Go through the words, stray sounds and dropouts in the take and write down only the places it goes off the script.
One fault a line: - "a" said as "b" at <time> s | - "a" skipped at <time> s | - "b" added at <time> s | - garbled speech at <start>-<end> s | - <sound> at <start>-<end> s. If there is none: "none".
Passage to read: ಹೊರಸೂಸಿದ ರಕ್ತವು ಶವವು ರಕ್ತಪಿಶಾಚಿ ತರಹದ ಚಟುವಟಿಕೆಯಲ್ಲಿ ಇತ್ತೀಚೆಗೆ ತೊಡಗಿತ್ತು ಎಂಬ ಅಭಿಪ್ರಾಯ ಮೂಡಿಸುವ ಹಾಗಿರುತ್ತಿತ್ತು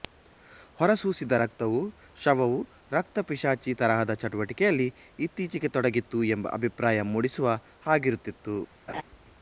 - laugh at 8.9-9.0 s